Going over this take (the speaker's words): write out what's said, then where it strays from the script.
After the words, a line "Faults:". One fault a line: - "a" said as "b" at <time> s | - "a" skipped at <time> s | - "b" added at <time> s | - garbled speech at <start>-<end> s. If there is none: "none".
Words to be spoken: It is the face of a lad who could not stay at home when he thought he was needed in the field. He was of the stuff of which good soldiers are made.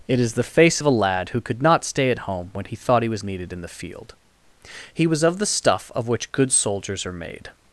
It is the face of a lad who could not stay at home when he thought he was needed in the field. He was of the stuff of which good soldiers are made.
Faults:
none